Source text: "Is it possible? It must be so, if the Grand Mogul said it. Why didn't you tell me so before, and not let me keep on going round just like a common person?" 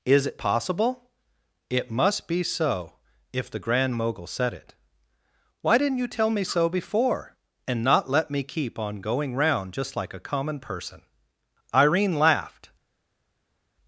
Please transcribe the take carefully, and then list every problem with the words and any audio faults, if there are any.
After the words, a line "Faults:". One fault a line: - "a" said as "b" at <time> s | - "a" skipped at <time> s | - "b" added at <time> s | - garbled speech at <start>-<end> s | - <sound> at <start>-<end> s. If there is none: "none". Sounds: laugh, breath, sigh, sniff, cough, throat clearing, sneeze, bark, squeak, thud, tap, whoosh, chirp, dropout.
"Is it possible? It must be so, if the Grand Mogul said it. Why didn't you tell me so before, and not let me keep on going round just like a common person?" Irene laughed
Faults:
- "Irene laughed" added at 11.7 s